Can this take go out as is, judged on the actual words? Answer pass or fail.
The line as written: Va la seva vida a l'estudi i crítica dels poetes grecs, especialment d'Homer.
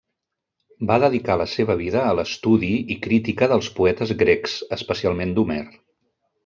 fail